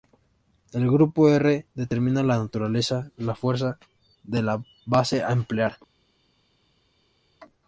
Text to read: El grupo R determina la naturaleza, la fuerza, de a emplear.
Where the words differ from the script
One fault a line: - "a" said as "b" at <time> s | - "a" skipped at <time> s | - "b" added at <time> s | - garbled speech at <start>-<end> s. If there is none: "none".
- "la base" added at 4.4 s